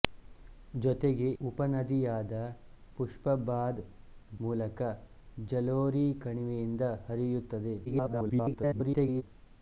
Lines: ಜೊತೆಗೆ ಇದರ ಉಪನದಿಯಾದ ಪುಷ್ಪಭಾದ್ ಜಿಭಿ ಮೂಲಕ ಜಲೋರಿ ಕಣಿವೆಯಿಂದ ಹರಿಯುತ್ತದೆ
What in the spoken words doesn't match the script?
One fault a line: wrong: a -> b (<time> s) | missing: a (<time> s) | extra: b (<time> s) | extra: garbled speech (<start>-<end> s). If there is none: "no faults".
missing: ಇದರ (1.3 s)
missing: ಜಿಭಿ (3.8 s)
extra: garbled speech (7.9-9.2 s)